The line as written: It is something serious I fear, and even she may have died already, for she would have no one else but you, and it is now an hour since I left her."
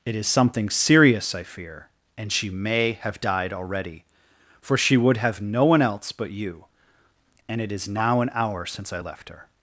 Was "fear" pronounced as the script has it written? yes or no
yes